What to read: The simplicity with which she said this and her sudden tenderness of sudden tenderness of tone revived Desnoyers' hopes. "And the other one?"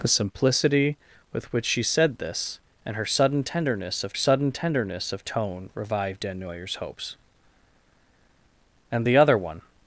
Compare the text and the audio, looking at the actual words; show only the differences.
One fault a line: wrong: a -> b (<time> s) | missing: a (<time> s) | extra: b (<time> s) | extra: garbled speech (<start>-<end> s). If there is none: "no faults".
no faults